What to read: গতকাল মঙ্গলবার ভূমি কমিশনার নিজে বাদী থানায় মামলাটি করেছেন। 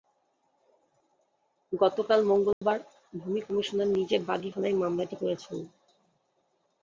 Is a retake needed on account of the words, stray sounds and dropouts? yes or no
yes